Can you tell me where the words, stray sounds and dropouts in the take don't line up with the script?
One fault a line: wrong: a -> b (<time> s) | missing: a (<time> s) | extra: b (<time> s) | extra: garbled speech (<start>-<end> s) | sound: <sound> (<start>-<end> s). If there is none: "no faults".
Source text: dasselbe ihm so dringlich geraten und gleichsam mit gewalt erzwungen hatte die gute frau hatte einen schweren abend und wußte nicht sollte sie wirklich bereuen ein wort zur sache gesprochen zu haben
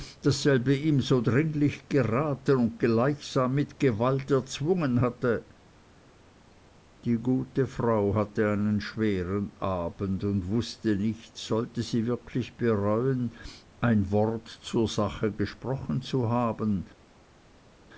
no faults